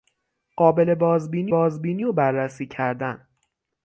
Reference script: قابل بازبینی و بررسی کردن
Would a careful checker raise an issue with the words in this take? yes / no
yes